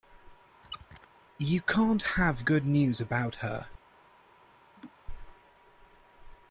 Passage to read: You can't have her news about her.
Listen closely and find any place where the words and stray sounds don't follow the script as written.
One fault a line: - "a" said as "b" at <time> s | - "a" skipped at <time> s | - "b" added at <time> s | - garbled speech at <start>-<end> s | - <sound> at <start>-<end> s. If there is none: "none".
- squeak at 0.6-1.1 s
- "her" said as "good" at 2.4 s
- laugh at 4.8-4.9 s